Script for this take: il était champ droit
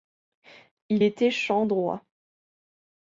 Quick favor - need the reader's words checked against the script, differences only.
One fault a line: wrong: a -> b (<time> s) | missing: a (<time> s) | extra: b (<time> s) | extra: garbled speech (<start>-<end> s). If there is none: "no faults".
no faults